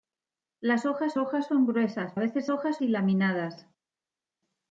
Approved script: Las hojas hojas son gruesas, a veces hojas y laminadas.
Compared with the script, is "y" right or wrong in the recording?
right